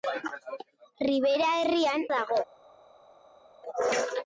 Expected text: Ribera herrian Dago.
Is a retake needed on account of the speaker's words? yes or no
no